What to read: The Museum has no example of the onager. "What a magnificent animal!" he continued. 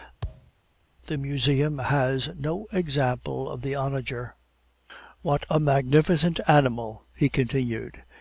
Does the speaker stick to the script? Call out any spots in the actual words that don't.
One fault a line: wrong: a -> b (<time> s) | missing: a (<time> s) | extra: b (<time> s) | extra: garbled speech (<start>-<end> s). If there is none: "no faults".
no faults